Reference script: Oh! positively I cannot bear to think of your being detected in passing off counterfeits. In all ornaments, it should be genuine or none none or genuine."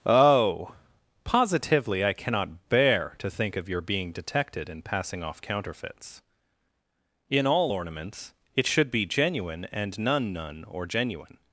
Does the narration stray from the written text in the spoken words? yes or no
yes